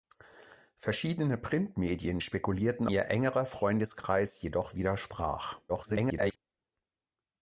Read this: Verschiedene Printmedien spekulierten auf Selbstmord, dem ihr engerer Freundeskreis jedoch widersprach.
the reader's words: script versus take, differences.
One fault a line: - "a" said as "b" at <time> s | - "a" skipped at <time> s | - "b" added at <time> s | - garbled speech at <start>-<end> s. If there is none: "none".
- "auf Selbstmord dem" skipped at 2.9 s
- garbled speech at 5.7-6.4 s